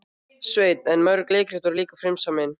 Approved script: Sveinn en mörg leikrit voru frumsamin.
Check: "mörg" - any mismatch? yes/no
no